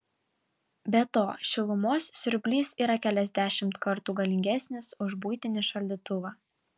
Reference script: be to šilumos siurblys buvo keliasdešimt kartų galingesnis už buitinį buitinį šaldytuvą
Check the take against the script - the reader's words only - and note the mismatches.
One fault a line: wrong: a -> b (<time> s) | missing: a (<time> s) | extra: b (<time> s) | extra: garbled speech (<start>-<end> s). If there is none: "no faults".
wrong: buvo -> yra (2.9 s)
missing: buitinį (5.7 s)